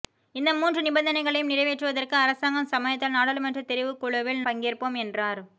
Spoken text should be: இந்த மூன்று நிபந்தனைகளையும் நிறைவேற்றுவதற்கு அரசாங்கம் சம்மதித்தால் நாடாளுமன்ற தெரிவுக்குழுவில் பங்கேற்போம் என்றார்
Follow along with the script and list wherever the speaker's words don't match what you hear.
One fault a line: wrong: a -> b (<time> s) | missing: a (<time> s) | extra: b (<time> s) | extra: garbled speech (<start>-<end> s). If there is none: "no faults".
no faults